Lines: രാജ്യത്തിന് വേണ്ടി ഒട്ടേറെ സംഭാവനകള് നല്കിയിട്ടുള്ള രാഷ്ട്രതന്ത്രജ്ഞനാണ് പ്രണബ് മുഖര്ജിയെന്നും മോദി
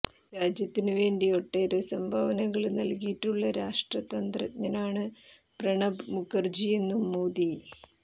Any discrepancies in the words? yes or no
no